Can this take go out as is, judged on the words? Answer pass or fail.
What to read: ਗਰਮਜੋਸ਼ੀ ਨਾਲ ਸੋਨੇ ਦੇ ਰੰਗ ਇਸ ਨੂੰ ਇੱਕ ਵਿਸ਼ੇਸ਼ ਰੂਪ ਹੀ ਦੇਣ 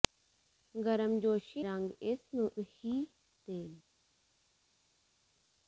fail